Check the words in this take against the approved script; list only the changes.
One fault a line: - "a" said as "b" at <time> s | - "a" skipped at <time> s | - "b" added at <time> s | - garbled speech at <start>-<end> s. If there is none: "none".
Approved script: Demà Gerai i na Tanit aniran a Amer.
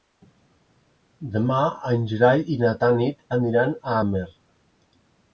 - "en" added at 1.9 s